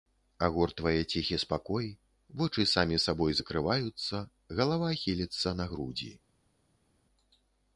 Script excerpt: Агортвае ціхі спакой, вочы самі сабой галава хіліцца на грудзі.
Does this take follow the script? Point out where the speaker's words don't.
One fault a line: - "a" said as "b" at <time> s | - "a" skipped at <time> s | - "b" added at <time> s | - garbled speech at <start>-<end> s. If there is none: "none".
- "закрываюцца" added at 3.4 s